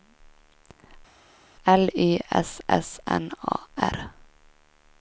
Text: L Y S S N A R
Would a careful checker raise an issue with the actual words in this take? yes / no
no